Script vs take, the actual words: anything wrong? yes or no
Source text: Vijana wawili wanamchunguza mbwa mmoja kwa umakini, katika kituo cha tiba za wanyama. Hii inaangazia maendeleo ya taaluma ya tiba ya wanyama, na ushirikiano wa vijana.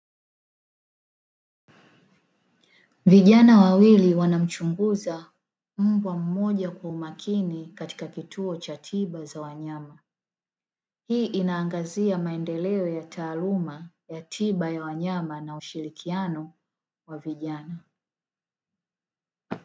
no